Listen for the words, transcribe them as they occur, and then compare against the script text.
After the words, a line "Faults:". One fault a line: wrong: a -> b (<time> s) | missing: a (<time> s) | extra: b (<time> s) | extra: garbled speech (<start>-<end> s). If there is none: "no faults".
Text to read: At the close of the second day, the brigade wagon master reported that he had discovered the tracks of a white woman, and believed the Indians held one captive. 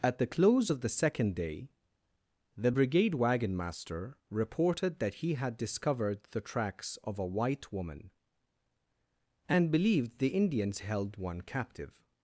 At the close of the second day, the brigade wagon master reported that he had discovered the tracks of a white woman, and believed the Indians held one captive.
Faults:
no faults